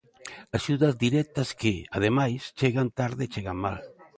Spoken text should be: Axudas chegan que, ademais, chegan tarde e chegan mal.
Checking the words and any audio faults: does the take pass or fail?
fail